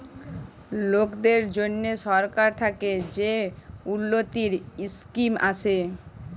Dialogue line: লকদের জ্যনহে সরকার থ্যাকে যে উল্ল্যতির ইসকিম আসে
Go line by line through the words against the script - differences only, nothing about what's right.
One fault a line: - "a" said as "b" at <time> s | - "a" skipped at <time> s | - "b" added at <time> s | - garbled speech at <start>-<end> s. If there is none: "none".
none